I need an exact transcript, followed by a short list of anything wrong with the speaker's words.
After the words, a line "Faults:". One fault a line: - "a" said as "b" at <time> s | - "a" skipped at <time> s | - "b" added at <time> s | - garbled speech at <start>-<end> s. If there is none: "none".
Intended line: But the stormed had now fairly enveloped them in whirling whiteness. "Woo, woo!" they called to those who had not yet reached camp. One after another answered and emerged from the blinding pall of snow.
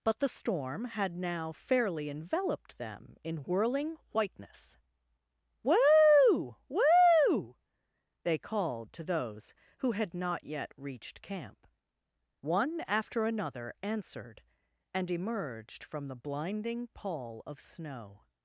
But the storm had now fairly enveloped them in whirling whiteness. "Woo, woo!" they called to those who had not yet reached camp. One after another answered and emerged from the blinding pall of snow.
Faults:
- "stormed" said as "storm" at 0.3 s